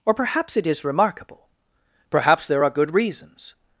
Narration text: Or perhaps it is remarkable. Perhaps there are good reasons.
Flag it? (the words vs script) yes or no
no